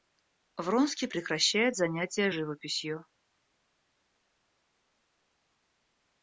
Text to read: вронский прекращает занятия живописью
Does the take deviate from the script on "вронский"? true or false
false